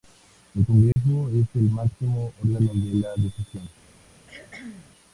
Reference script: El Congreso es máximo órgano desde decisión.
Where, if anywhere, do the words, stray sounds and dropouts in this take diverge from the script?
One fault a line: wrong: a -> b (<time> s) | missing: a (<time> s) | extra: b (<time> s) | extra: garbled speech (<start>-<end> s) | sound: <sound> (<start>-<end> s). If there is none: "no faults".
sound: dropout (0.9-1.0 s)
extra: el (1.6 s)
wrong: desde -> de (2.7 s)
sound: cough (4.3-4.9 s)